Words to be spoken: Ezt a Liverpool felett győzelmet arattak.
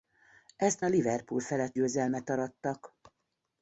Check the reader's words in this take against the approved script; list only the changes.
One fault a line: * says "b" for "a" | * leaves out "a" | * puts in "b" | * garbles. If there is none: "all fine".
all fine